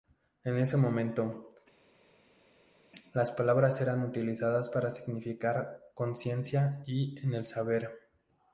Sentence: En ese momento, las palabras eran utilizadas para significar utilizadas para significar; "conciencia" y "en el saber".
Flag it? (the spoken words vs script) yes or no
yes